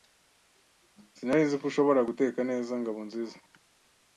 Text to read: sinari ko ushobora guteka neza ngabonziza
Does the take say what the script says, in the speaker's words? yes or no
no